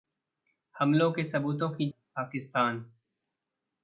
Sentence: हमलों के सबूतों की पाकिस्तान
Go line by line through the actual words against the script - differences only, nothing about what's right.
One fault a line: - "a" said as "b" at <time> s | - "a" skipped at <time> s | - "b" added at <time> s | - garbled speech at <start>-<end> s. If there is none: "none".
none